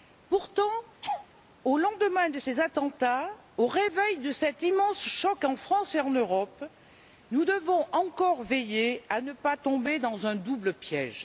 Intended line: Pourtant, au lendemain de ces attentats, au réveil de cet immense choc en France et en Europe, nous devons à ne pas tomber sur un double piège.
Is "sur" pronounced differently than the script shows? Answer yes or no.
yes